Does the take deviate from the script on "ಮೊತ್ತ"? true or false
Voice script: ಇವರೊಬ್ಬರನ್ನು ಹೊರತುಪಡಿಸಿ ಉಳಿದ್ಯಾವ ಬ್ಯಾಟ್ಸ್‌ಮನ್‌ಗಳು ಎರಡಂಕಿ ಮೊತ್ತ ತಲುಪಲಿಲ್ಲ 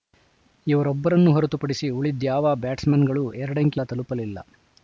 true